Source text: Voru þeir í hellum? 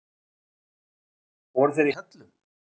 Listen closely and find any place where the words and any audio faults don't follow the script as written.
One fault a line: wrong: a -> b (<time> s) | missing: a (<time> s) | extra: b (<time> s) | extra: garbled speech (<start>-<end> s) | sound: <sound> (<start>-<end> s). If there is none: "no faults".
no faults